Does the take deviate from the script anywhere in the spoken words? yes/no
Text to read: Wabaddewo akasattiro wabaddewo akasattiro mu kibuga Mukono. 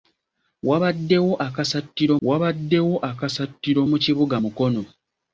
no